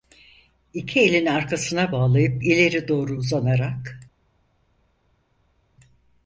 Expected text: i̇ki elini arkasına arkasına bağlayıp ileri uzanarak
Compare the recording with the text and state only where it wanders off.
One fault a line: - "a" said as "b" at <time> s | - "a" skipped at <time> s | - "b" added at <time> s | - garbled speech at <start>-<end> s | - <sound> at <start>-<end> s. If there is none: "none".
- "arkasına" skipped at 1.9 s
- "doğru" added at 2.9 s